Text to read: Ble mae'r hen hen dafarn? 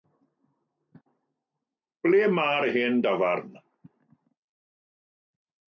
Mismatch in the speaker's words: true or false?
true